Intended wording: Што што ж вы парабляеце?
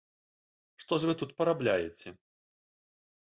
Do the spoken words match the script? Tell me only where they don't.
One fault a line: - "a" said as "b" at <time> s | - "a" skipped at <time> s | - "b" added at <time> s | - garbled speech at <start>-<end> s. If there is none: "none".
- "што" skipped at 0.9 s
- "тут" added at 1.2 s